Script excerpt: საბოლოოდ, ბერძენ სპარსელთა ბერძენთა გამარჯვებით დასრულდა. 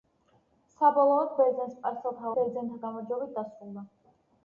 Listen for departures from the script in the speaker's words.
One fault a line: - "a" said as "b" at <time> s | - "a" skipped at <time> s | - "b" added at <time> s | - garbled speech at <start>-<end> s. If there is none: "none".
none